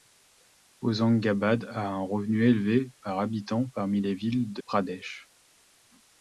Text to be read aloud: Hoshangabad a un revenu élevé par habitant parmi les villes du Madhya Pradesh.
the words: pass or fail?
fail